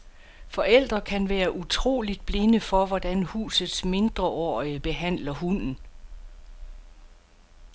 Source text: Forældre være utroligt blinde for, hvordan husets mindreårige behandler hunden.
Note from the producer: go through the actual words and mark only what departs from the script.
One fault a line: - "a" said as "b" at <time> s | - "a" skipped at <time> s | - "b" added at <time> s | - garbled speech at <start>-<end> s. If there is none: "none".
- "kan" added at 1.0 s